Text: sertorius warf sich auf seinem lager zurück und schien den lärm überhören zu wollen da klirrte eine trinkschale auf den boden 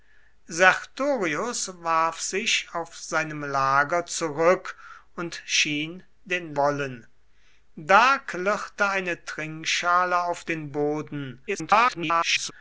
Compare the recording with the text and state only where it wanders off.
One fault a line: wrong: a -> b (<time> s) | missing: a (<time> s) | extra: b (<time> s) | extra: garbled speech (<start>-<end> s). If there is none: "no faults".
missing: lärm überhören zu (6.5 s)
extra: garbled speech (11.5-12.5 s)